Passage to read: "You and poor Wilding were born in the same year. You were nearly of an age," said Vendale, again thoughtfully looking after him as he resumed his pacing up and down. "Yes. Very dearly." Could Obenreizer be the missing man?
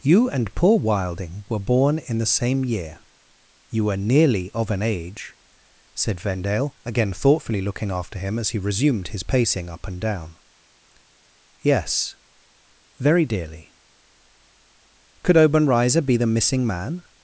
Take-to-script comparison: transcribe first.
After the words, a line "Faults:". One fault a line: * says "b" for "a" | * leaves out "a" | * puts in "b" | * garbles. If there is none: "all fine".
"You and poor Wilding were born in the same year. You were nearly of an age," said Vendale, again thoughtfully looking after him as he resumed his pacing up and down. "Yes. Very dearly." Could Obenreizer be the missing man?
Faults:
all fine